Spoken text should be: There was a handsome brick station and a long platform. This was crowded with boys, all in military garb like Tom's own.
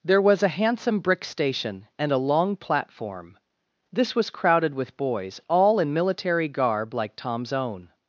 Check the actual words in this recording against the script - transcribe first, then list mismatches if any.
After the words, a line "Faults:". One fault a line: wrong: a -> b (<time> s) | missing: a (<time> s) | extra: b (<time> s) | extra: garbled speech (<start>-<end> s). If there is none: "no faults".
There was a handsome brick station and a long platform. This was crowded with boys, all in military garb like Tom's own.
Faults:
no faults